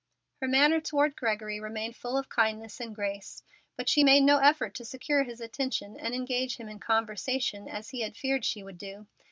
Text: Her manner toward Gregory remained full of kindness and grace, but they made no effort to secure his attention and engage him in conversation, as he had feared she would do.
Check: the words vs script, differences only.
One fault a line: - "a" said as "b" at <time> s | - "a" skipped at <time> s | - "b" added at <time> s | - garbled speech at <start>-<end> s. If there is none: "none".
- "they" said as "she" at 3.9 s